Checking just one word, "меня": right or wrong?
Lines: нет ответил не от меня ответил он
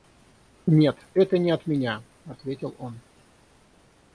right